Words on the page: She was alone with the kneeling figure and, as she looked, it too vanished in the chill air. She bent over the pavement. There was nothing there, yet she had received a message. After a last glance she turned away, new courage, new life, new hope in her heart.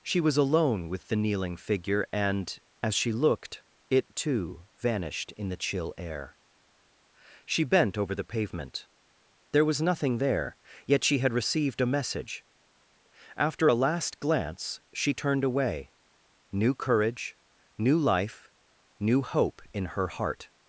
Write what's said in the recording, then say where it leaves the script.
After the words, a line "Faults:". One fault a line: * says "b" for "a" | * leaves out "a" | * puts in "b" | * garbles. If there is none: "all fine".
She was alone with the kneeling figure and, as she looked, it too vanished in the chill air. She bent over the pavement. There was nothing there, yet she had received a message. After a last glance she turned away, new courage, new life, new hope in her heart.
Faults:
all fine